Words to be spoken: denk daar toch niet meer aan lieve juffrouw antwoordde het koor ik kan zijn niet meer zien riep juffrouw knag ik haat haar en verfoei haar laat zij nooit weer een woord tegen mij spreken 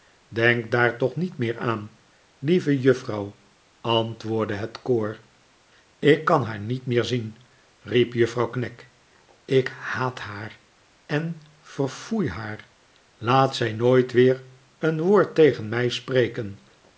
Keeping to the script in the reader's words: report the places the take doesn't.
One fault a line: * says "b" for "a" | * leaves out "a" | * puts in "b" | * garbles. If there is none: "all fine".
* says "haar" for "zijn"